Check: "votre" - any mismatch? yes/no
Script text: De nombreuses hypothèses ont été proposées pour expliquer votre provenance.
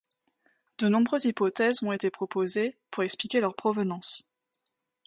yes